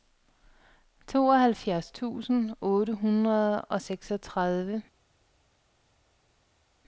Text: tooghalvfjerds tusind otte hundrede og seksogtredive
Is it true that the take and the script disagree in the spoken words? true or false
false